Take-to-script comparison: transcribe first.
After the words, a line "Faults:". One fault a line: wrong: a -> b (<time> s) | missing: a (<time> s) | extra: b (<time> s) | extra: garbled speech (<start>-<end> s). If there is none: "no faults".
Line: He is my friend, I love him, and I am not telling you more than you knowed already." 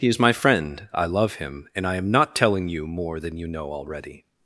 He is my friend, I love him, and I am not telling you more than you know already."
Faults:
wrong: knowed -> know (3.5 s)